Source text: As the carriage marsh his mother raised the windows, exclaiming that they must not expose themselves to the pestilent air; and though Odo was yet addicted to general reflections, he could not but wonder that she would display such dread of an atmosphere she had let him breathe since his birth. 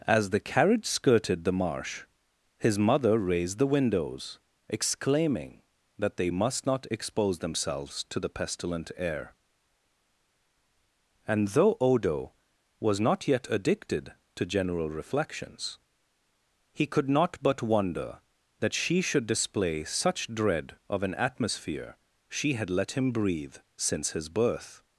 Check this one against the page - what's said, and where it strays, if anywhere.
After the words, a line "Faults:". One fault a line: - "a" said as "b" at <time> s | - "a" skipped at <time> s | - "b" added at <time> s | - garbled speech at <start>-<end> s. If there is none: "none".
As the carriage skirted the marsh his mother raised the windows, exclaiming that they must not expose themselves to the pestilent air; and though Odo was not yet addicted to general reflections, he could not but wonder that she should display such dread of an atmosphere she had let him breathe since his birth.
Faults:
- "skirted the" added at 0.8 s
- "not" added at 13.0 s
- "would" said as "should" at 19.0 s